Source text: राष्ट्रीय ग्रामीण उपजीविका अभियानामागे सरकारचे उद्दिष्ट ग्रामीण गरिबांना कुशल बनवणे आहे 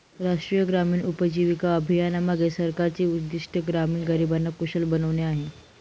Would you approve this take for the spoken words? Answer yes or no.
yes